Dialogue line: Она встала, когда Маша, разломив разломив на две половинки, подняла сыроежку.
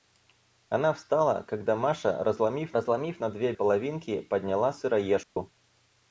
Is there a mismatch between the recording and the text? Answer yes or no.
no